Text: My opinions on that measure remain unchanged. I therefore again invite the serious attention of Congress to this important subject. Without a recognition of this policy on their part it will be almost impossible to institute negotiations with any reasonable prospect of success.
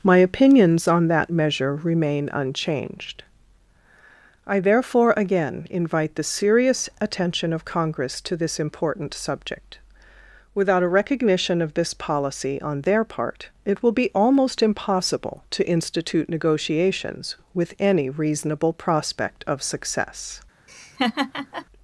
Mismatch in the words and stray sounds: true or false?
true